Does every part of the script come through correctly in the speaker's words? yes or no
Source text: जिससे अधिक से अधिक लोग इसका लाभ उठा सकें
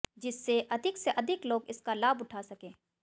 yes